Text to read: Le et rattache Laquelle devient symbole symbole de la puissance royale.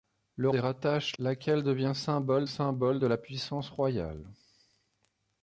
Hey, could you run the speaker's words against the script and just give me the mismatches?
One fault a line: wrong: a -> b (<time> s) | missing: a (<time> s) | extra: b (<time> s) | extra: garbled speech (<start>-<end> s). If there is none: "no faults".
no faults